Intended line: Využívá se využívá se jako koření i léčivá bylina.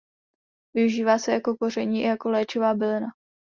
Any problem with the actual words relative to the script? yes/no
yes